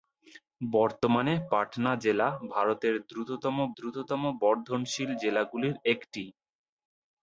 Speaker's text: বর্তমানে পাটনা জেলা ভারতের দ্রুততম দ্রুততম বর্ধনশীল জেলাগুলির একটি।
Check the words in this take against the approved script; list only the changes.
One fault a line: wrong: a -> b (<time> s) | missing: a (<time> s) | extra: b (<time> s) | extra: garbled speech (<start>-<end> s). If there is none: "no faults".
no faults